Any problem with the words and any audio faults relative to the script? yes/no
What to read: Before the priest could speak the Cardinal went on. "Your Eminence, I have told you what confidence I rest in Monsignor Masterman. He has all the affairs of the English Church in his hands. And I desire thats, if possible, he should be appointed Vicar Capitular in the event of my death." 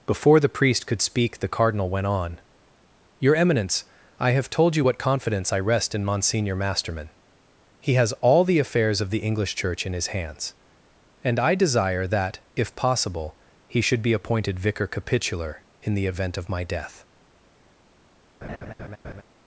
yes